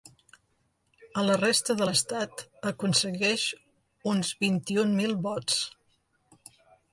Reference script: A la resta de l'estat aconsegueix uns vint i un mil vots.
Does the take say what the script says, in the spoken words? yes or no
yes